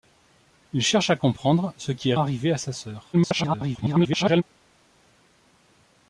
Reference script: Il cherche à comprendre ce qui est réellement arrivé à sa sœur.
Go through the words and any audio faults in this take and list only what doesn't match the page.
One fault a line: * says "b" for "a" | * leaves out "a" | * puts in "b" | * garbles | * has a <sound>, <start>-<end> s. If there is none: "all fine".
* leaves out "réellement"
* garbles